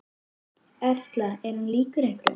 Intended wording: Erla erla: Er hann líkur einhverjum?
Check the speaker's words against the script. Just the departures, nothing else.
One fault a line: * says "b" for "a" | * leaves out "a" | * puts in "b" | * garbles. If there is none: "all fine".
* leaves out "erla"